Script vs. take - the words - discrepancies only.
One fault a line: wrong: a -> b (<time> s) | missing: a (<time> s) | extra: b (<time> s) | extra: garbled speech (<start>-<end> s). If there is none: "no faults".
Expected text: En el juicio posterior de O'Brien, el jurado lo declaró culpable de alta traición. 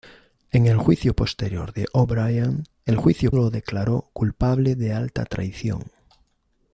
wrong: jurado -> juicio (2.9 s)